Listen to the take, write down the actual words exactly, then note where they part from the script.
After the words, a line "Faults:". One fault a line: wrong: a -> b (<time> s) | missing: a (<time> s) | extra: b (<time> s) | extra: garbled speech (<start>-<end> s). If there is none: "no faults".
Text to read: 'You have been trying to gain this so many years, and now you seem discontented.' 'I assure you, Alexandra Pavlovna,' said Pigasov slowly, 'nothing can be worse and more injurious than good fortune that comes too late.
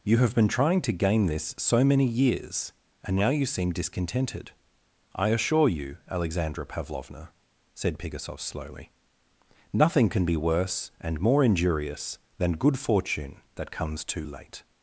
'You have been trying to gain this so many years, and now you seem discontented.' 'I assure you, Alexandra Pavlovna,' said Pigasov slowly, 'nothing can be worse and more injurious than good fortune that comes too late.
Faults:
no faults